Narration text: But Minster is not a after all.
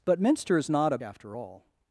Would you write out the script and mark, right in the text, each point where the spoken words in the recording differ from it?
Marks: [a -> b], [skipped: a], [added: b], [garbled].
But Minster is not a after all.